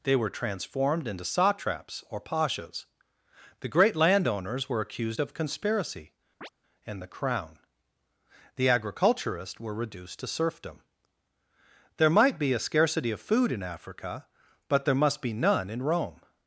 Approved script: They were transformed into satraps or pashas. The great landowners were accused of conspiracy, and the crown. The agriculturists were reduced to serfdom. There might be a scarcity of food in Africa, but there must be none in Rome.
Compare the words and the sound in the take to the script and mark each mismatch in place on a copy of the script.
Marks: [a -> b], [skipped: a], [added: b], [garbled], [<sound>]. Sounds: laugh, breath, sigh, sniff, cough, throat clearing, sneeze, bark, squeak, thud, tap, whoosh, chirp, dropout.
They were transformed into satraps or pashas. The great landowners were accused of conspiracy, [chirp] and the crown. The agriculturists were reduced to serfdom. There might be a scarcity of food in Africa, but there must be none in Rome.